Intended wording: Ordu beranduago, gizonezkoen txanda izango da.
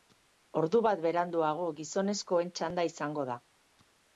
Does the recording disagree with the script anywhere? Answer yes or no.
yes